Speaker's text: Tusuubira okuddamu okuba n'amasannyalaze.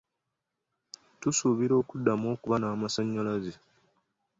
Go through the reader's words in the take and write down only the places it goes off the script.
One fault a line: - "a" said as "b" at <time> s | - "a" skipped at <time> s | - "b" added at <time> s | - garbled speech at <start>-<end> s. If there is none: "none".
none